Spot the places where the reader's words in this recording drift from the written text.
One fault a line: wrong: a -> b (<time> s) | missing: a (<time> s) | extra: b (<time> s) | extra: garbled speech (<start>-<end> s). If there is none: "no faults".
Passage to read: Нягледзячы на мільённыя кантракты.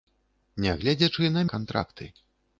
missing: мільённыя (1.4 s)